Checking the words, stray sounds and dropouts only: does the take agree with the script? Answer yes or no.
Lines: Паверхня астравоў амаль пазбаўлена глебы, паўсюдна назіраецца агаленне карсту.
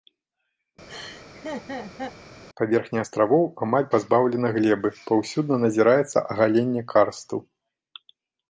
no